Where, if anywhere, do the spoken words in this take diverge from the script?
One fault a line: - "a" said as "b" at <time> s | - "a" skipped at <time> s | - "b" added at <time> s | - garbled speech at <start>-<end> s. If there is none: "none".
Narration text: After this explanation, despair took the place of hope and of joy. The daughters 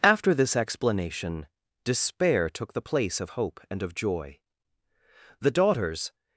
none